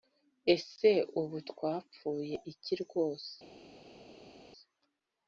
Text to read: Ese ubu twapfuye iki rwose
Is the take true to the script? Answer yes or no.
yes